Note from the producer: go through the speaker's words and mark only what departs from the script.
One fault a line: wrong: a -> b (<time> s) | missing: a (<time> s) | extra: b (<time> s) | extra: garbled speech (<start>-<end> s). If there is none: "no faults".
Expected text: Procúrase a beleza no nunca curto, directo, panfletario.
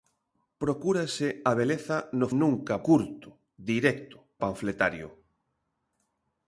no faults